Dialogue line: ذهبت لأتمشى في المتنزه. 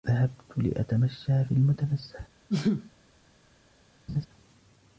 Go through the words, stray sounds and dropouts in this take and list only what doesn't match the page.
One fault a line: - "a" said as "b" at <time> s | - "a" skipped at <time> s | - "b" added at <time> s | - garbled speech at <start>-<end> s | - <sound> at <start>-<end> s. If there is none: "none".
- sneeze at 2.5-2.9 s
- laugh at 4.1-4.3 s